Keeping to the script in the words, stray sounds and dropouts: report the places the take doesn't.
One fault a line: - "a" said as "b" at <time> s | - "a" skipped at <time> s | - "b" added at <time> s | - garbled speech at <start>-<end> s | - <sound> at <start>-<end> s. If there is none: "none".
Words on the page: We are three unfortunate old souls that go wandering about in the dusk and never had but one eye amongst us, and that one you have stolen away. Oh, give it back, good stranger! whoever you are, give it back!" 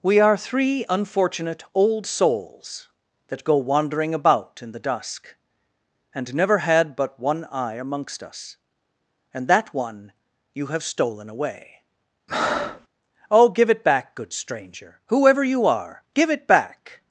- breath at 12.3-12.9 s